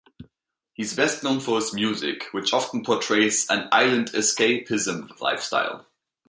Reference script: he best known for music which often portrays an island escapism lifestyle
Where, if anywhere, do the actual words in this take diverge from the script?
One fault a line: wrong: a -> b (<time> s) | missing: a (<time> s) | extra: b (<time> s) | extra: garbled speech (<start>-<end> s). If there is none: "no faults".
extra: is (0.8 s)
extra: his (1.6 s)